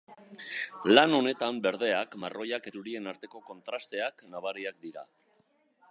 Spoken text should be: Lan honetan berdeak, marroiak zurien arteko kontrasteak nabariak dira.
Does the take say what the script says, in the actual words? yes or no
yes